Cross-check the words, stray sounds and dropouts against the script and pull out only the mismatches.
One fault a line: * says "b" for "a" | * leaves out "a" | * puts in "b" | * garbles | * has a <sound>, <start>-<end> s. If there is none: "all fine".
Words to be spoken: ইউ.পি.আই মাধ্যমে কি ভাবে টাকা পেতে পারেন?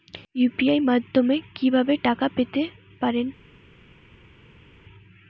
all fine